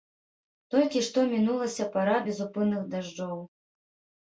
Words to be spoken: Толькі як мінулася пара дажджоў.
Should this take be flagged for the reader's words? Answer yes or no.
yes